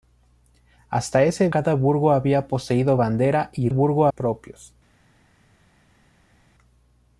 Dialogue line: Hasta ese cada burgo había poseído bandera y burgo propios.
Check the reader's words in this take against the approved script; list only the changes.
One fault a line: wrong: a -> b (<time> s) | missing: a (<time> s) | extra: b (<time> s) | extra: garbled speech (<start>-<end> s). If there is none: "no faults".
no faults